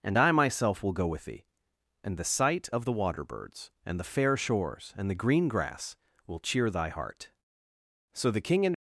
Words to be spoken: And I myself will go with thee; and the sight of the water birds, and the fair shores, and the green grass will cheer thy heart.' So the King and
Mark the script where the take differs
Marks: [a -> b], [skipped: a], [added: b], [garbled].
And I myself will go with thee; and the sight of the water birds, and the fair shores, and the green grass will cheer thy heart.' So the King and